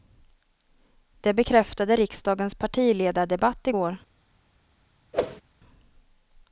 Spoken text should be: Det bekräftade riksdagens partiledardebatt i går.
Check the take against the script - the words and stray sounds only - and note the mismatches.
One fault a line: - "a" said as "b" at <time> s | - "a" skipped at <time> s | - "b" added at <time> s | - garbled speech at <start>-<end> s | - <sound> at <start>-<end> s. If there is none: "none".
- whoosh at 5.1-5.4 s